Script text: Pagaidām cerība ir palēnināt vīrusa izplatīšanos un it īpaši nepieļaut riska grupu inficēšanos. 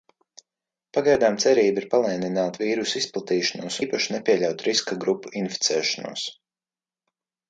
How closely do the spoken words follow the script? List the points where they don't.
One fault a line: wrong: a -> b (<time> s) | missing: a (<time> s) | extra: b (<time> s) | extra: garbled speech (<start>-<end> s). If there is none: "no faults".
missing: un it (3.8 s)